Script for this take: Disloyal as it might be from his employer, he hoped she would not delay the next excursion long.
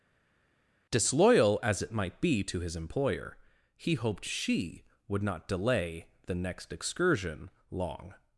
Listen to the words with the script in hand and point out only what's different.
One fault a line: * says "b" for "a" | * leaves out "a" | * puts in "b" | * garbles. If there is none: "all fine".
* says "to" for "from"